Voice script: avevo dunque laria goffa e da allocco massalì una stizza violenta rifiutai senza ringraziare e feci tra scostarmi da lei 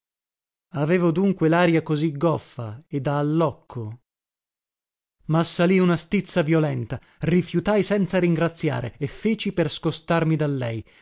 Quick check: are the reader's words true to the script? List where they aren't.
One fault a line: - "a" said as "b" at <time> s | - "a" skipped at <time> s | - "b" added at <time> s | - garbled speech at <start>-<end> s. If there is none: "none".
- "così" added at 1.8 s
- "tra" said as "per" at 9.5 s